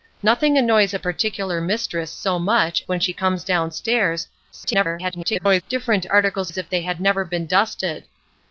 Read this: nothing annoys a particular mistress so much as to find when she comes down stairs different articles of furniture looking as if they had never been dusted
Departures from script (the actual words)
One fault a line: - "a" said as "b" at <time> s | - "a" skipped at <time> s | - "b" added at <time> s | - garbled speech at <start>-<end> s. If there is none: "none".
- "as to find" skipped at 2.8 s
- garbled speech at 4.5-5.6 s
- "of furniture looking" skipped at 6.5 s